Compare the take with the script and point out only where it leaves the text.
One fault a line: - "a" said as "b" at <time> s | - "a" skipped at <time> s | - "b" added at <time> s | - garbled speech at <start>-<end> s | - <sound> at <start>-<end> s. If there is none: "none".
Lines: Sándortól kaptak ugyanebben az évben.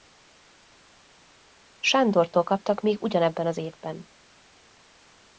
- "még" added at 2.8 s